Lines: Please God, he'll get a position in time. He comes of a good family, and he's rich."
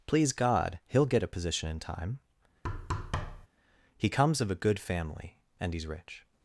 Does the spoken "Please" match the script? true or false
true